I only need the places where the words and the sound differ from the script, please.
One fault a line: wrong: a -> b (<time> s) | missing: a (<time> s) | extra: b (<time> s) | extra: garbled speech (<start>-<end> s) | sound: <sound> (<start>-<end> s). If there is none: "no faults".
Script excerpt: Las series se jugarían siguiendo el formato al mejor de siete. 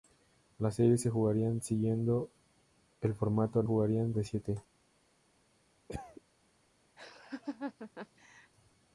wrong: mejor -> jugarían (3.6 s)
sound: cough (5.9-6.2 s)
sound: laugh (7.0-8.5 s)